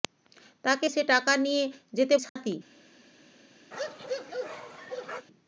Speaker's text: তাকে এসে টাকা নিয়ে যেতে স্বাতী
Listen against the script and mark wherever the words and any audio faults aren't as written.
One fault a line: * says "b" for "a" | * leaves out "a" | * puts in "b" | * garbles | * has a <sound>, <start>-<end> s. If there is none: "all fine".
* has a dropout, 2.3-2.4 s
* has a bark, 3.7-5.3 s